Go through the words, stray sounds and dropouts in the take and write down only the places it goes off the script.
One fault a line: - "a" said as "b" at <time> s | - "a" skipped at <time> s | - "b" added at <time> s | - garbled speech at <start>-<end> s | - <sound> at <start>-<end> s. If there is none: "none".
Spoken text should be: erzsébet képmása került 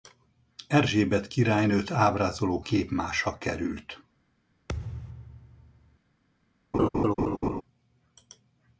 - "királynőt ábrázoló" added at 1.3 s
- thud at 4.7-6.0 s
- laugh at 6.7-7.6 s